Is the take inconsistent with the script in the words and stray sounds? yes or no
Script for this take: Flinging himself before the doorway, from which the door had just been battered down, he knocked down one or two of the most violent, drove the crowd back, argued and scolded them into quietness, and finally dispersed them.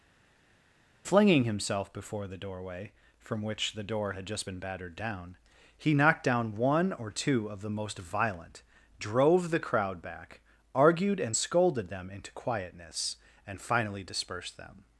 no